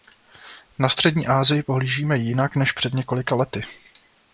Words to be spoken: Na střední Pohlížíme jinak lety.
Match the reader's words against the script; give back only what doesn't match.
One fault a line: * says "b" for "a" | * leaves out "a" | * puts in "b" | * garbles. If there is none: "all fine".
* puts in "Asii"
* puts in "než před několika"